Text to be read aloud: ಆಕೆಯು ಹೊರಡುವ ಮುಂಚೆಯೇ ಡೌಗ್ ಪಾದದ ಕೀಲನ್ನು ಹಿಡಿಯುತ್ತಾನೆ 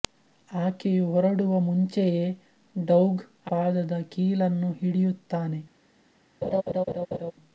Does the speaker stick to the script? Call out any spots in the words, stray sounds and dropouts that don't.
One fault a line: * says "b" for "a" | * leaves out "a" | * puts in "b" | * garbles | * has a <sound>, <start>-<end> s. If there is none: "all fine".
* has a laugh, 6.4-7.3 s